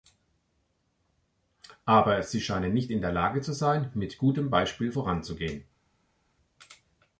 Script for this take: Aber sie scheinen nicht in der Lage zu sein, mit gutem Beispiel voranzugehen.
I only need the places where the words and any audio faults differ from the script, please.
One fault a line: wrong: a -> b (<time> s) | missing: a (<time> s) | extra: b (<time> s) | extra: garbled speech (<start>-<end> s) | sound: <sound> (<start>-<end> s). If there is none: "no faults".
no faults